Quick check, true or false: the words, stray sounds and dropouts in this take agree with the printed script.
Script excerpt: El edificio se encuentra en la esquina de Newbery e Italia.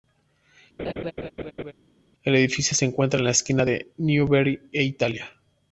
false